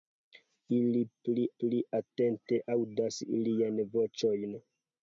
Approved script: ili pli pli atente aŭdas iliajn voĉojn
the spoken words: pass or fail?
pass